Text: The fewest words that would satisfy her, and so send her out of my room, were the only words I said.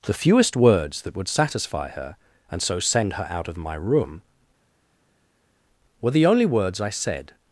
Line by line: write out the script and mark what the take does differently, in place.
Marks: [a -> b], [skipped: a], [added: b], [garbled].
The fewest words that would satisfy her, and so send her out of my room, were the only words I said.